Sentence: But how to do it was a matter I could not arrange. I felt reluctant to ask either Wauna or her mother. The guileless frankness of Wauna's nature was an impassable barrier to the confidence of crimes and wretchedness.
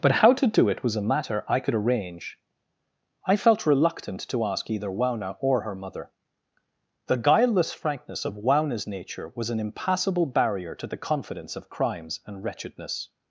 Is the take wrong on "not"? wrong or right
wrong